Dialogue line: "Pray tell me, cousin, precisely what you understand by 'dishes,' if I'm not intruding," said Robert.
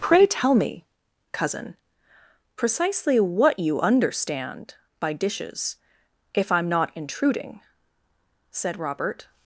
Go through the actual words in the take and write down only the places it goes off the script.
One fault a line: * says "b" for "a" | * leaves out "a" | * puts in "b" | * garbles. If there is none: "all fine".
all fine